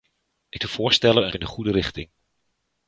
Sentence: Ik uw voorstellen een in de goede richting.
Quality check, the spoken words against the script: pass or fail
pass